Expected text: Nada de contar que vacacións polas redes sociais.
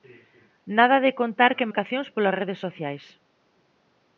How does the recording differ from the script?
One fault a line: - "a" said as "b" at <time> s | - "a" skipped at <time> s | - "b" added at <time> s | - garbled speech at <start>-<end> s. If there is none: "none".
none